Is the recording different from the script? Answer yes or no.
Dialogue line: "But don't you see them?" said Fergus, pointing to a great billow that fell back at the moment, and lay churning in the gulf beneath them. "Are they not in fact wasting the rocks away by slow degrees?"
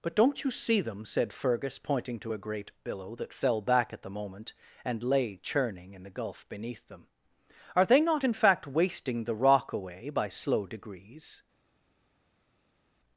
yes